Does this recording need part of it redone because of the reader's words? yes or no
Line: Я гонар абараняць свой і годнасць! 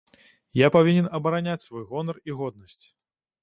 yes